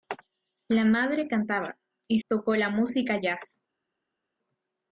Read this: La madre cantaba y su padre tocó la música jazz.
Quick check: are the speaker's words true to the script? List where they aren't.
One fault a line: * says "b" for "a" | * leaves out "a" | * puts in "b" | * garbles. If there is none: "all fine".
* leaves out "su padre"